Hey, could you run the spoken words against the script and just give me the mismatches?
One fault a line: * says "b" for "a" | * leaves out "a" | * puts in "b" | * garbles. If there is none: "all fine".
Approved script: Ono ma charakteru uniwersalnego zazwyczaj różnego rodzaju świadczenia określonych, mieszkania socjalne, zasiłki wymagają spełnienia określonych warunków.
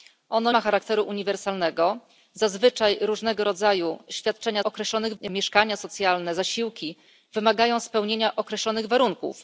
all fine